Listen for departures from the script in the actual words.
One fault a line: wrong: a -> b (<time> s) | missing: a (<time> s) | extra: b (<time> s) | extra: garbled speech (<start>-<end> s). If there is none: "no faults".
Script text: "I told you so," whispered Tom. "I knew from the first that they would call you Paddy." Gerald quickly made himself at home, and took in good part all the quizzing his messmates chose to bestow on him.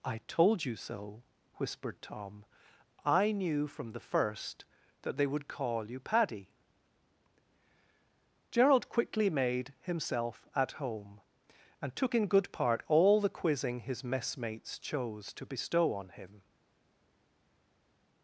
no faults